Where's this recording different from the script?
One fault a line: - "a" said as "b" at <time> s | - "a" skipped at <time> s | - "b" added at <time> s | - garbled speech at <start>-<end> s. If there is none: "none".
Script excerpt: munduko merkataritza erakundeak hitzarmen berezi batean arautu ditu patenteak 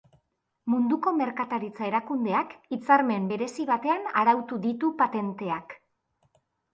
none